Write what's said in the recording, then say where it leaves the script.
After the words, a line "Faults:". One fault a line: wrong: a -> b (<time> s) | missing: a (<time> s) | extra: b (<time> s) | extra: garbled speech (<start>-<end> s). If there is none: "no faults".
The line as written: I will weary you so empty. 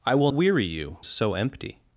I will weary you so empty.
Faults:
no faults